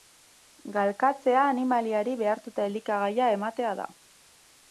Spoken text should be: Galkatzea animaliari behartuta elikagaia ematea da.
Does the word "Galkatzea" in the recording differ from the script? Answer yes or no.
no